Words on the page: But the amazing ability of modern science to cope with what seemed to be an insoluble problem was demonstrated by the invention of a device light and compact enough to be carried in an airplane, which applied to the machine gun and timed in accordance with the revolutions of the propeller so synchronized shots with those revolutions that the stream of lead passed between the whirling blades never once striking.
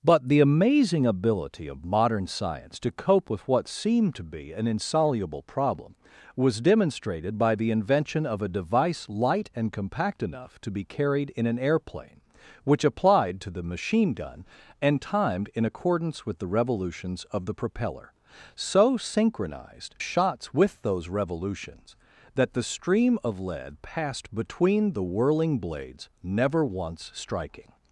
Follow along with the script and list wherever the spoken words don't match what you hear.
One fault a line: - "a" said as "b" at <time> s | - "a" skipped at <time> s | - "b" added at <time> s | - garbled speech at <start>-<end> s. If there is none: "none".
none